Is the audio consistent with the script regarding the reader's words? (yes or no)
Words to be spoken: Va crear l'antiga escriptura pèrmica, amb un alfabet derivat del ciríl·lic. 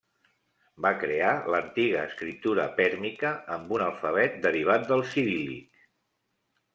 yes